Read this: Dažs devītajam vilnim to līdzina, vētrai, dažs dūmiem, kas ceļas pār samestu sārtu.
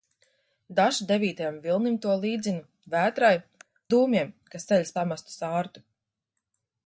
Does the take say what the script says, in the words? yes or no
no